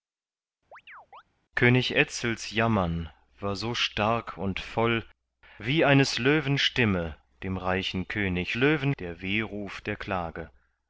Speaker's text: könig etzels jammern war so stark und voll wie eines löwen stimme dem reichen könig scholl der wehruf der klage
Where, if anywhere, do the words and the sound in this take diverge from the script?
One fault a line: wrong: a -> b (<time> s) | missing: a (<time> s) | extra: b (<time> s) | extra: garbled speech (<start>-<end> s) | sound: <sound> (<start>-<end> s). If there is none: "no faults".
sound: chirp (0.7-1.2 s)
wrong: scholl -> löwen (8.5 s)